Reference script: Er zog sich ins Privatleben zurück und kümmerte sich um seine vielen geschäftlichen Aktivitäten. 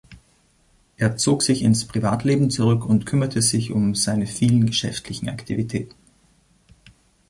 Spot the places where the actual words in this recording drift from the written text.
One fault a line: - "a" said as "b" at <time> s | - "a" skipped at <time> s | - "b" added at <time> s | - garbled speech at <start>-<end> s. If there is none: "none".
none